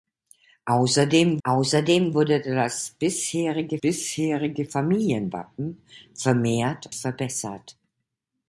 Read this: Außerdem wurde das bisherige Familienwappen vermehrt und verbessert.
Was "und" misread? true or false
true